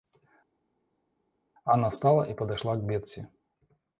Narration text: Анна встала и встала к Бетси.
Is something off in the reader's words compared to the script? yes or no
yes